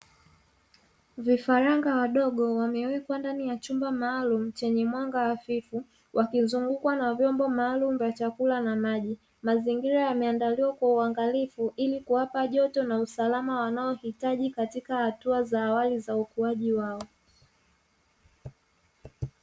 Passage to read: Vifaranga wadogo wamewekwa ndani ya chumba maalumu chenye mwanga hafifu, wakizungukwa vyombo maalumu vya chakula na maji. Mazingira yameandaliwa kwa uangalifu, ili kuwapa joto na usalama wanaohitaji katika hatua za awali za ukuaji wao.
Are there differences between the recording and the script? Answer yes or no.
yes